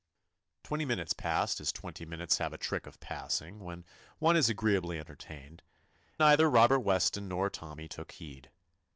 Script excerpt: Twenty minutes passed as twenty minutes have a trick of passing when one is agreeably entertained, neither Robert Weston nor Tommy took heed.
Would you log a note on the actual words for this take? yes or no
no